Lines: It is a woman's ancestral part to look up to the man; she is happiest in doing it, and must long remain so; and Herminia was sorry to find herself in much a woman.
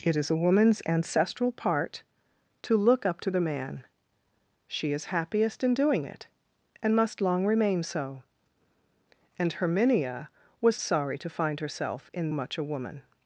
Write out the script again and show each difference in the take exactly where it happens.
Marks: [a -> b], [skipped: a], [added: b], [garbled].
It is a woman's ancestral part to look up to the man; she is happiest in doing it, and must long remain so; and Herminia was sorry to find herself in much a woman.